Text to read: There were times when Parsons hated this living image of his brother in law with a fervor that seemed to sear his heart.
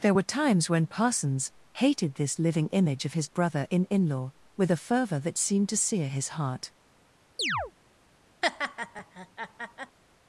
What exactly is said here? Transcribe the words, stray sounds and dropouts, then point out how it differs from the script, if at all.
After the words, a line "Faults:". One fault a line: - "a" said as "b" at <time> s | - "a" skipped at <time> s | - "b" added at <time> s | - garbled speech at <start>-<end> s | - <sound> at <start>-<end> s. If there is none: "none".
There were times when Parsons hated this living image of his brother in in law with a fervor that seemed to sear his heart.
Faults:
- "in" added at 3.8 s
- chirp at 7.4-7.7 s
- laugh at 8.4-10.0 s